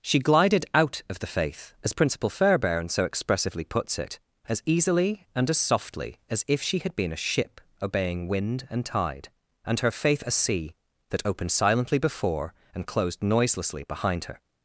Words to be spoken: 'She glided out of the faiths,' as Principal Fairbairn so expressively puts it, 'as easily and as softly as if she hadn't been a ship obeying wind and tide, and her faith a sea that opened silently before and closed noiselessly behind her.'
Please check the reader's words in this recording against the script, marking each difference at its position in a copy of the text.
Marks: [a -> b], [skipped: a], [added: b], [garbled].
'She glided out of the [faiths,' -> faith] as Principal Fairbairn so expressively puts it, 'as easily and as softly as if she [hadn't -> had] been a ship obeying wind and tide, and her faith a sea that opened silently before and closed noiselessly behind her.'